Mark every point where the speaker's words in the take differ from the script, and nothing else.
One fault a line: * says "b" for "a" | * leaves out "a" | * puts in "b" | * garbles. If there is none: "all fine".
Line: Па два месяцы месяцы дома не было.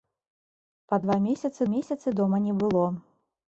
all fine